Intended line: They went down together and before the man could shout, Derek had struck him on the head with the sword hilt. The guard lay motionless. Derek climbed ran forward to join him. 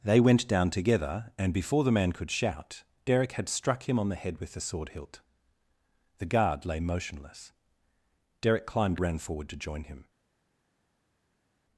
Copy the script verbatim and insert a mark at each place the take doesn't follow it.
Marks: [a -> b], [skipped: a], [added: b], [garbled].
They went down together and before the man could shout, Derek had struck him on the head with the sword hilt. The guard lay motionless. Derek climbed ran forward to join him.